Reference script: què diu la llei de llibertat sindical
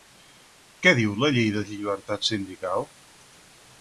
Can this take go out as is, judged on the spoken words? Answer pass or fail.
pass